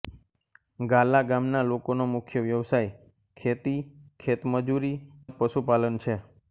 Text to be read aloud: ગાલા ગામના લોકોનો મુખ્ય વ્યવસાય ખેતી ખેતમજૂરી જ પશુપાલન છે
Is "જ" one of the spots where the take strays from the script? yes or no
no